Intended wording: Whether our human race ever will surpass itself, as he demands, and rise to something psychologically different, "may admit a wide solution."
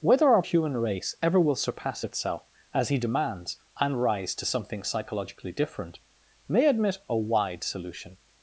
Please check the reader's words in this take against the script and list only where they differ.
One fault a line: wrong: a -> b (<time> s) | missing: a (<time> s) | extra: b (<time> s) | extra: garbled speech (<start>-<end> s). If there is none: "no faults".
no faults